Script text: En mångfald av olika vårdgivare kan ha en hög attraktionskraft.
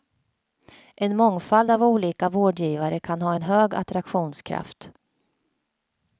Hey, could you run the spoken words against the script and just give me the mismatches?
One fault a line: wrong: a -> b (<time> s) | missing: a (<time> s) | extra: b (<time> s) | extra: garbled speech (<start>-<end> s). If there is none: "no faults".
no faults